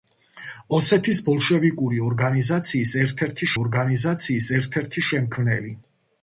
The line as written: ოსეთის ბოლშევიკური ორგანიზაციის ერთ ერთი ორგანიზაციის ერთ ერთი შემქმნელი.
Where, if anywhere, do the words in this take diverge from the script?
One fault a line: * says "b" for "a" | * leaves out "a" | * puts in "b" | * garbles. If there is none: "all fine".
all fine